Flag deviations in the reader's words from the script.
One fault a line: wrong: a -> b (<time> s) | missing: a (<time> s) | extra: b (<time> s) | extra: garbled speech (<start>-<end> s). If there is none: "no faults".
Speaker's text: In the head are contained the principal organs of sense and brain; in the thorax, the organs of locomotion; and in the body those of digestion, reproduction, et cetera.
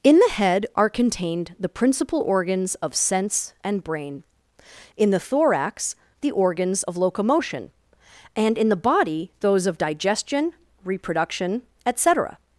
no faults